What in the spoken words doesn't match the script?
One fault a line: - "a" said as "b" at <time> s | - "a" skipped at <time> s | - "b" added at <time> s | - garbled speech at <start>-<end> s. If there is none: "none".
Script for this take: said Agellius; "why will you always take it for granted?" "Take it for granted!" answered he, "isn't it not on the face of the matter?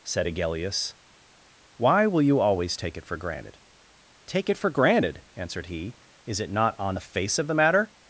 - "isn't" said as "is" at 6.2 s